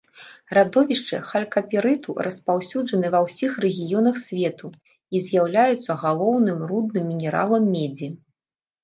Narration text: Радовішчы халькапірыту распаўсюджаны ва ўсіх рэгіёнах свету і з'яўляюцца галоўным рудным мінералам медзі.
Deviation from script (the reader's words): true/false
false